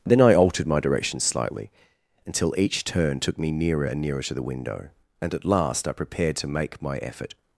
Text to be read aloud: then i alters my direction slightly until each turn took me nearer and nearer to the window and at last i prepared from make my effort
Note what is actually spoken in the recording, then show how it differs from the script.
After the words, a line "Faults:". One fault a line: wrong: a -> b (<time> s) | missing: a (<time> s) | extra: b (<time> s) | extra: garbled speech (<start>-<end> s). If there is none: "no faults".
then i altered my direction slightly until each turn took me nearer and nearer to the window and at last i prepared to make my effort
Faults:
wrong: alters -> altered (0.3 s)
wrong: from -> to (6.4 s)